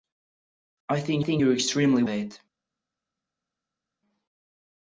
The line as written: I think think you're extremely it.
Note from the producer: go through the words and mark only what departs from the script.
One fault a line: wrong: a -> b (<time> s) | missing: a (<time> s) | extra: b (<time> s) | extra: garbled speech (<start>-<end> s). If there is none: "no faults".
no faults